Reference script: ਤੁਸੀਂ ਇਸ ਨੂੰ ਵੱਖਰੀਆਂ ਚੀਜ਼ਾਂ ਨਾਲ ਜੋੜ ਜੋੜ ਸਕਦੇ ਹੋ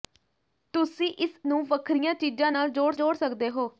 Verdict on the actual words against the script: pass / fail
pass